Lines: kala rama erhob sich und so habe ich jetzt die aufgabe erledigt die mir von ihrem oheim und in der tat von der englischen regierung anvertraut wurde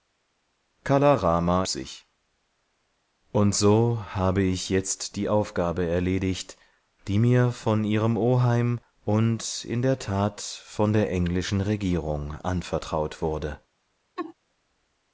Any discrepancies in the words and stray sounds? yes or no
yes